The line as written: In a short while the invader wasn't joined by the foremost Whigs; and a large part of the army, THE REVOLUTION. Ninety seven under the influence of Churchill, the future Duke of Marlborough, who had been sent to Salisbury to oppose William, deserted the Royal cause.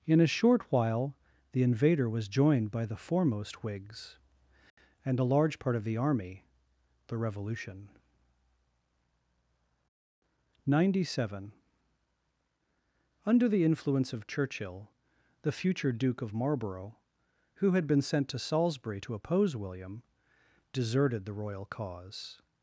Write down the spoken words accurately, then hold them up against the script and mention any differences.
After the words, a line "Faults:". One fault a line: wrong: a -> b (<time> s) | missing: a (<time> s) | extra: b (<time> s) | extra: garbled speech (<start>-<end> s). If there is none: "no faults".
In a short while the invader was joined by the foremost Whigs; and a large part of the army, THE REVOLUTION. Ninety seven under the influence of Churchill, the future Duke of Marlborough, who had been sent to Salisbury to oppose William, deserted the Royal cause.
Faults:
wrong: wasn't -> was (2.1 s)